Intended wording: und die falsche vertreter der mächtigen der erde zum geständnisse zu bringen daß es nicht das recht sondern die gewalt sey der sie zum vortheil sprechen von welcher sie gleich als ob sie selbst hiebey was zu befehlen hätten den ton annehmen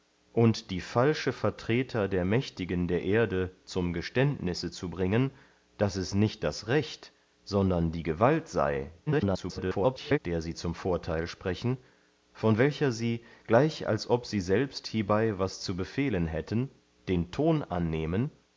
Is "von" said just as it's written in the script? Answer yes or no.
yes